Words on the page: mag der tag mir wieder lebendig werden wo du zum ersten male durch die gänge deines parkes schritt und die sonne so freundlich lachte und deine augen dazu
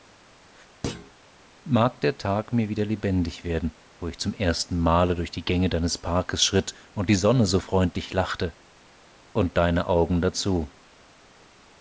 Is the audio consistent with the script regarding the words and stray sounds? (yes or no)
no